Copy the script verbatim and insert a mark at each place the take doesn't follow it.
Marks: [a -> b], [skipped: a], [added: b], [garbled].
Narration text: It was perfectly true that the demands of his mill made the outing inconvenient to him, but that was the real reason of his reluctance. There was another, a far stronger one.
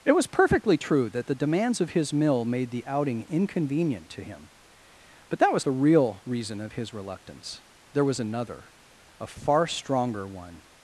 It was perfectly true that the demands of his mill made the outing inconvenient to him, but that was the real reason of his reluctance. There was another, a far stronger one.